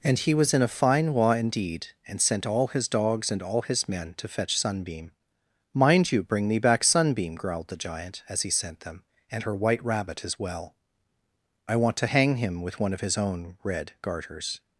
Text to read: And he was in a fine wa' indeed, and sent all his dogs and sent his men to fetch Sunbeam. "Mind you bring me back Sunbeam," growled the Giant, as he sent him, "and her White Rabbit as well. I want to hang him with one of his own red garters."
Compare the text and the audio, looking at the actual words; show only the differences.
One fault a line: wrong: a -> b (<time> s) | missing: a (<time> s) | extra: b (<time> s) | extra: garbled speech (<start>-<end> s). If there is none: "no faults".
wrong: sent -> all (3.4 s)
wrong: him -> them (8.8 s)